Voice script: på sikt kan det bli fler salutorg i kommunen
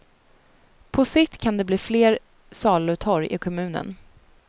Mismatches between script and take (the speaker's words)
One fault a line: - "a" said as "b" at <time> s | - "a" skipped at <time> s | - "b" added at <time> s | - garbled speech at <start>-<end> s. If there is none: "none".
none